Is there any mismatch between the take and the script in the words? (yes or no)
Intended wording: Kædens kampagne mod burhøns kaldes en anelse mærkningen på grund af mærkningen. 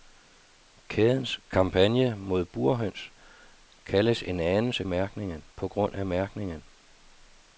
no